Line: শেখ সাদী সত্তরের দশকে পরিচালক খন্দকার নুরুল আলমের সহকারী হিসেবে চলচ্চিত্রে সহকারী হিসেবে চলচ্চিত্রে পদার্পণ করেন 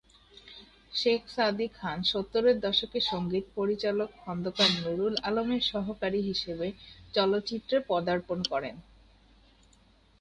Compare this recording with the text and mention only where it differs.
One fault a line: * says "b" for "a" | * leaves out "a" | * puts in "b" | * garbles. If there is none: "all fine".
* puts in "খান"
* puts in "সঙ্গীত"
* leaves out "সহকারী হিসেবে চলচ্চিত্রে"